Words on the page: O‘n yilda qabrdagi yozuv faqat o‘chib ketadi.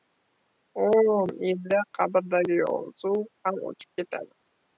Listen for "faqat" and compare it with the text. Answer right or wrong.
wrong